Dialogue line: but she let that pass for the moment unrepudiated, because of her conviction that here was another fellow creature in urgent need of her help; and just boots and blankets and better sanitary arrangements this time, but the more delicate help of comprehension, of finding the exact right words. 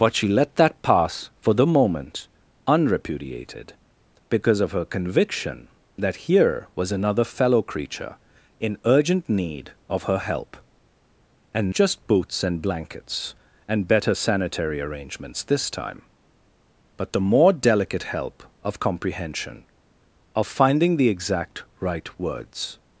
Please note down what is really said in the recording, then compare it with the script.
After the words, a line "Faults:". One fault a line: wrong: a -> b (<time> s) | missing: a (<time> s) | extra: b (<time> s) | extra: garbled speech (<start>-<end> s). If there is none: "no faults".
but she let that pass for the moment unrepudiated, because of her conviction that here was another fellow creature in urgent need of her help; and just boots and blankets and better sanitary arrangements this time, but the more delicate help of comprehension, of finding the exact right words.
Faults:
no faults